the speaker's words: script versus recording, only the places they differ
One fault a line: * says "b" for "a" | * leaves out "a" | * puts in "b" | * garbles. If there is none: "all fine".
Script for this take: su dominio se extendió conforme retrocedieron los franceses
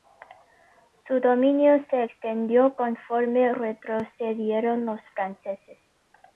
all fine